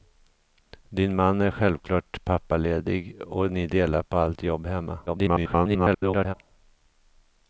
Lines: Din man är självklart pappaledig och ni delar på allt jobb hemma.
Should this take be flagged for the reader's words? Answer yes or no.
yes